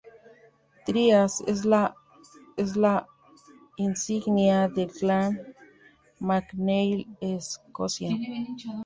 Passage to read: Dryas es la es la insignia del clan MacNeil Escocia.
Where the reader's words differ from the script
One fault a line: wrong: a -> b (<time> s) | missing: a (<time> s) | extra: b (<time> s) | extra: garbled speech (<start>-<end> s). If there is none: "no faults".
no faults